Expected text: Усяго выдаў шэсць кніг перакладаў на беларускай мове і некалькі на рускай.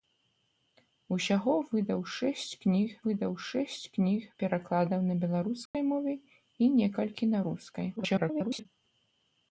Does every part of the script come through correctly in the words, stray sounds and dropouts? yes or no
no